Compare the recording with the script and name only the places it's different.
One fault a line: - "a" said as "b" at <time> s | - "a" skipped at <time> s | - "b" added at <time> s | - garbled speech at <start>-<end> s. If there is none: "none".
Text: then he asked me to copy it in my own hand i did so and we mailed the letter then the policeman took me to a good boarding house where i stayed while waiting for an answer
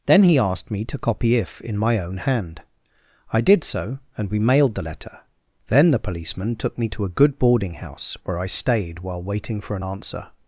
- "it" said as "if" at 1.4 s